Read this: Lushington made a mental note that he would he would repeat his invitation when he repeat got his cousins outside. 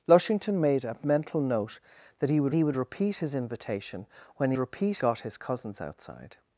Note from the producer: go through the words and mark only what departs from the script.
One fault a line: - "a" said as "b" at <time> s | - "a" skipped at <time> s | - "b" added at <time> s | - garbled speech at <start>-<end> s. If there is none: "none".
none